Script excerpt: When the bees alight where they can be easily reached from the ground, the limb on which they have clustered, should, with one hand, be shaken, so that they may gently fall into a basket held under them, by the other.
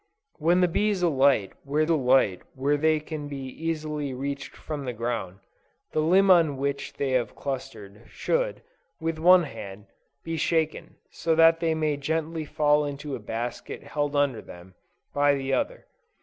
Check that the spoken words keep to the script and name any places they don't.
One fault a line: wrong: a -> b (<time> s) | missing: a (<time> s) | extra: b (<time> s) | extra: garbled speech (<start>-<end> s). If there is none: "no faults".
extra: alight where (1.9 s)